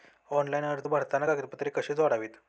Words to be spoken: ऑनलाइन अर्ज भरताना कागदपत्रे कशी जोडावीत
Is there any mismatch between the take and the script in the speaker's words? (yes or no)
no